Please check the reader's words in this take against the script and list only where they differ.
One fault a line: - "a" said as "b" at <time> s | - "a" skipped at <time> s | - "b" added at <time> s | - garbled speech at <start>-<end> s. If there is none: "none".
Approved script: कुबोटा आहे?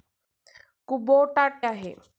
none